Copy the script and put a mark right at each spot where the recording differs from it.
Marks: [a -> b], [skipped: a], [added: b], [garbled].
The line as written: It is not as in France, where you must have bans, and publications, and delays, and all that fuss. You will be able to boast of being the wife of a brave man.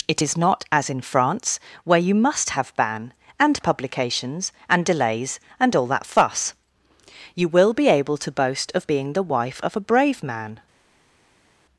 It is not as in France, where you must have [bans, -> ban] and publications, and delays, and all that fuss. You will be able to boast of being the wife of a brave man.